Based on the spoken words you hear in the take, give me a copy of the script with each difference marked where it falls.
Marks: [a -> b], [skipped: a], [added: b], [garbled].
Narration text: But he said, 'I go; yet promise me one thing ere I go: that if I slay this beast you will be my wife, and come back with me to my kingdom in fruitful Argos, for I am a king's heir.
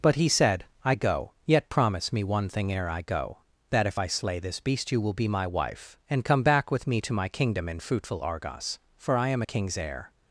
But he said, 'I go; yet promise me one thing ere I go: that if I slay this beast you will be my wife, and come back with me to my kingdom in fruitful Argos, for I am a king's heir.